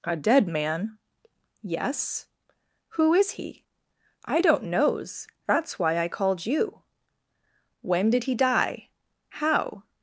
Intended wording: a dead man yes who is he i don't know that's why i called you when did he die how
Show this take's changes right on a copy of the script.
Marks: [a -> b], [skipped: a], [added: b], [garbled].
a dead man yes who is he i don't [know -> knows] that's why i called you when did he die how